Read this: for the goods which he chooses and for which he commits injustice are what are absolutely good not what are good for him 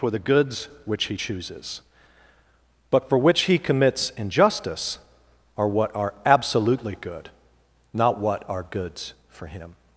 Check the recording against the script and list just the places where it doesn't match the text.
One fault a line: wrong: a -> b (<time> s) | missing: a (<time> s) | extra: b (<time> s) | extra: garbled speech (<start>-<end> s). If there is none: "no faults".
wrong: and -> but (2.9 s)
wrong: good -> goods (8.6 s)